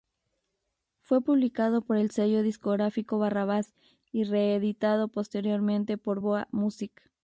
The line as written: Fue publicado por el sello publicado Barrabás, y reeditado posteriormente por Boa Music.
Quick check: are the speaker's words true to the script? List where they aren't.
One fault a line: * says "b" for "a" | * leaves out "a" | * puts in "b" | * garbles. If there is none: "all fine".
* says "discográfico" for "publicado"